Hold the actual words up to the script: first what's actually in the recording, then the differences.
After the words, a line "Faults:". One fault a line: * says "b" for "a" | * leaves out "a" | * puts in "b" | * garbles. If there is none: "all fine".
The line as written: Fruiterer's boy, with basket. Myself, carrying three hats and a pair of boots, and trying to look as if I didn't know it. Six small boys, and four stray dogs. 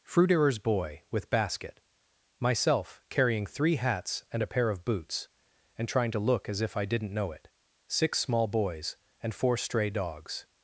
Fruiterer's boy, with basket. Myself, carrying three hats and a pair of boots, and trying to look as if I didn't know it. Six small boys, and four stray dogs.
Faults:
all fine